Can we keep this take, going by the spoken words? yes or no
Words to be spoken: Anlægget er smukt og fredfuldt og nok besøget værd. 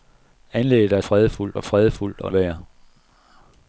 no